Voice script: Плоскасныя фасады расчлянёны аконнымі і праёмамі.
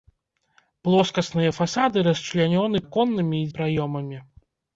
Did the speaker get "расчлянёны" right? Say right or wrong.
right